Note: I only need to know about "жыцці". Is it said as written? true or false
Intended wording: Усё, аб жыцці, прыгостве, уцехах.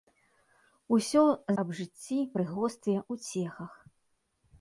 true